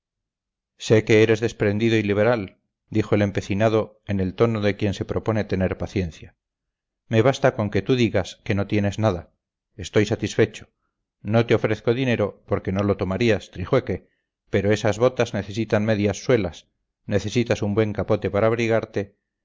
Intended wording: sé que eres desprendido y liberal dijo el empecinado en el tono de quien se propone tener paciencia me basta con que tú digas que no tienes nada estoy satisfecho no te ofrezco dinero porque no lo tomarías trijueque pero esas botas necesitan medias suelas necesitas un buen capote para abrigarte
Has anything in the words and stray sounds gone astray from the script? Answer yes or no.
no